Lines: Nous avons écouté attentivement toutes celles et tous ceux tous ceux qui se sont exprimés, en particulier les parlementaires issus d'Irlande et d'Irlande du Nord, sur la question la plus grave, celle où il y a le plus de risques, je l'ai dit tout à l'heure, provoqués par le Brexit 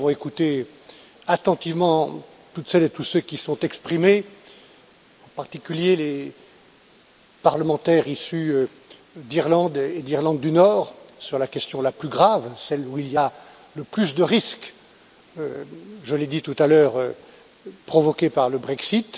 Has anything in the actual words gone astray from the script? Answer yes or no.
yes